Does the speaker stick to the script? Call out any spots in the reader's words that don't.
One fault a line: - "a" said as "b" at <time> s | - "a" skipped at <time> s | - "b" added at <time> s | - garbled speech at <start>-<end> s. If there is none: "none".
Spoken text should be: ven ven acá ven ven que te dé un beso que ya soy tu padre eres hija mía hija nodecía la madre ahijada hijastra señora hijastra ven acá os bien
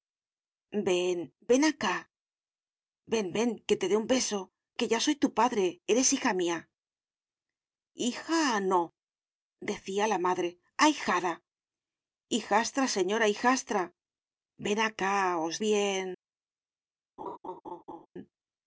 none